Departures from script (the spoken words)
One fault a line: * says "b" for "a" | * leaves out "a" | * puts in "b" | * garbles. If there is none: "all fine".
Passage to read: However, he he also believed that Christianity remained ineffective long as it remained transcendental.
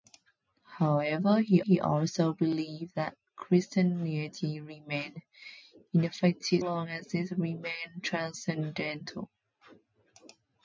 all fine